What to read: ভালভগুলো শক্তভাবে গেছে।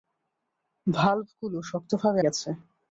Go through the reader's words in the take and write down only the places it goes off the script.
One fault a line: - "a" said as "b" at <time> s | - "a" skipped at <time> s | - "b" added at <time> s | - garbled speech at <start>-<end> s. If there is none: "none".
none